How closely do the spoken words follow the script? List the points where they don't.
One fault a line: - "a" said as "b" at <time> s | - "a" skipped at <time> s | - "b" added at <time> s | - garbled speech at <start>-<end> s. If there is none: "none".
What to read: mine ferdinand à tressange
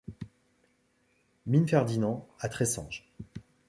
none